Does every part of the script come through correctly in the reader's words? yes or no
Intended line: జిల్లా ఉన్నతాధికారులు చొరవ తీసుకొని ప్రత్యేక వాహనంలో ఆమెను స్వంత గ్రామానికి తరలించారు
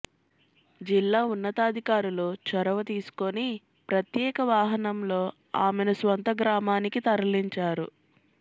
yes